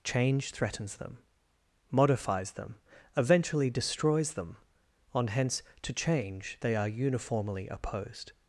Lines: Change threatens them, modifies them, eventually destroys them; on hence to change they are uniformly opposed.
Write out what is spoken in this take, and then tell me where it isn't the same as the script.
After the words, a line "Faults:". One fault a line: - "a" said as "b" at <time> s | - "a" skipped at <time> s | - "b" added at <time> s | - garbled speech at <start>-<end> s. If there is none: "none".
Change threatens them, modifies them, eventually destroys them; on hence to change they are uniformly opposed.
Faults:
none